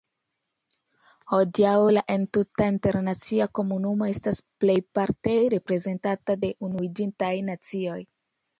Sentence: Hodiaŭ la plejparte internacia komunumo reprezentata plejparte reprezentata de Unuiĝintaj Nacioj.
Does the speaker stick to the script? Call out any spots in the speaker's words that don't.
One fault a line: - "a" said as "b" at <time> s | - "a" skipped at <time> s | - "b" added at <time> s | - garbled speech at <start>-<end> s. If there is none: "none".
- "plejparte" said as "entuta" at 2.1 s
- "reprezentata" said as "estas" at 4.1 s